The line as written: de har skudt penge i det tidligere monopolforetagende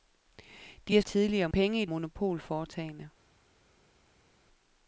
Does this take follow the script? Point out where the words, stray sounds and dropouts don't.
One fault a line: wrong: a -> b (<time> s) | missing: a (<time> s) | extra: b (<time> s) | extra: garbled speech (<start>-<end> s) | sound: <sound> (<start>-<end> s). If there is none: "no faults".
wrong: skudt -> tidligere (1.0 s)
missing: det tidligere (1.9 s)